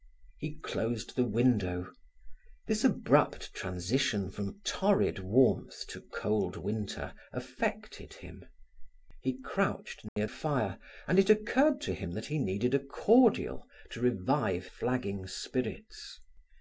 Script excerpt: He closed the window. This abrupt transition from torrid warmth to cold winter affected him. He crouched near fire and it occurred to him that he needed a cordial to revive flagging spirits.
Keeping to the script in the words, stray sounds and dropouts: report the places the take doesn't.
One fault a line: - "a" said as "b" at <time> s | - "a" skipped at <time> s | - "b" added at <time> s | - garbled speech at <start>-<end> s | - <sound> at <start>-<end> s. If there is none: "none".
- dropout at 10.1-10.2 s